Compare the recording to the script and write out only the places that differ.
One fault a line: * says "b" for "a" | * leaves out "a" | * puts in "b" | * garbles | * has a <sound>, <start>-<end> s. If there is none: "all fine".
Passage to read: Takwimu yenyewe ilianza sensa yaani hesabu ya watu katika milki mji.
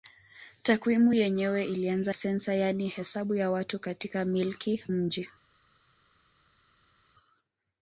all fine